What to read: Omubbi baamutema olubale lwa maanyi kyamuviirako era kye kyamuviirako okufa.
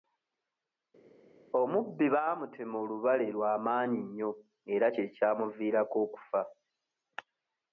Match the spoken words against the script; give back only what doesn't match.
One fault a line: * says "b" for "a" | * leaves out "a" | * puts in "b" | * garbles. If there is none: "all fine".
* says "nnyo" for "kyamuviirako"